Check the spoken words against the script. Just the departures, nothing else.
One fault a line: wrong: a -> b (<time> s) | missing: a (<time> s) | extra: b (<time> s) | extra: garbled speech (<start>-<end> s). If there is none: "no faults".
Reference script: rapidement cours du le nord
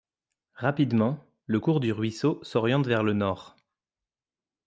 extra: le (1.4 s)
extra: ruisseau s'oriente vers (1.9 s)